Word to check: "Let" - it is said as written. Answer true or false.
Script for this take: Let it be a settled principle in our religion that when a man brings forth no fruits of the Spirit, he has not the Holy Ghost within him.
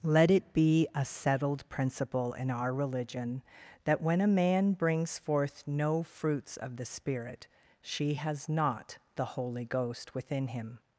true